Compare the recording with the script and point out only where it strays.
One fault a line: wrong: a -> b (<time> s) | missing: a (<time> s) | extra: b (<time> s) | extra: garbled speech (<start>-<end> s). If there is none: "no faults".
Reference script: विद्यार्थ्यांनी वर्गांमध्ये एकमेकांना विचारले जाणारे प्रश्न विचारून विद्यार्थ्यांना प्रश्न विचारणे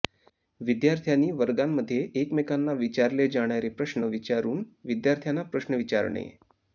no faults